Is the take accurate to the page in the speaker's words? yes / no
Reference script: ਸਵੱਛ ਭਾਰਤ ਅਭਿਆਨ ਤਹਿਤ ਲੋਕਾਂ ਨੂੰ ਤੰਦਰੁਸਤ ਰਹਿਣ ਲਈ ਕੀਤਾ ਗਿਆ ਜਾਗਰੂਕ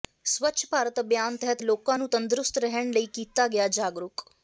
yes